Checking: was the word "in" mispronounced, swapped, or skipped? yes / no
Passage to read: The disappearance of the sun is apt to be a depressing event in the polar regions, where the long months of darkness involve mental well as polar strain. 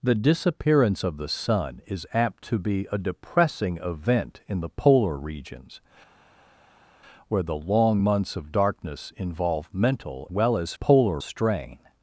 no